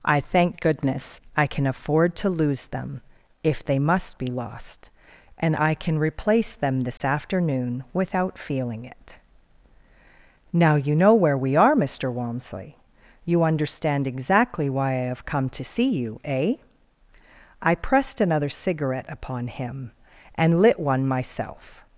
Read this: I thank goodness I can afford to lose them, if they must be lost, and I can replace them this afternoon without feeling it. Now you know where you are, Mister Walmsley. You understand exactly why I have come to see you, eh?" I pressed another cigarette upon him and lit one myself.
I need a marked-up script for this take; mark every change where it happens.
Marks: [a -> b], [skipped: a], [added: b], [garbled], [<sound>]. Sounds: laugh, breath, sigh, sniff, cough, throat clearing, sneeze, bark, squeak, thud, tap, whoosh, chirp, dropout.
I thank goodness I can afford to lose them, if they must be lost, and I can replace them this [dropout] afternoon without feeling it. Now you know where [you -> we] are, Mister Walmsley. You understand exactly why I have come to see you, eh?" I pressed another cigarette upon him and lit one myself.